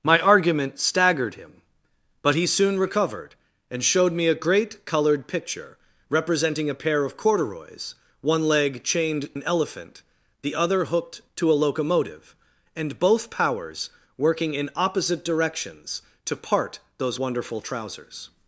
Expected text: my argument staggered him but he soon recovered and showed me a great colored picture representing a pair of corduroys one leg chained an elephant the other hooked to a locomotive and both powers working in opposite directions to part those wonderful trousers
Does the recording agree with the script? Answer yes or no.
yes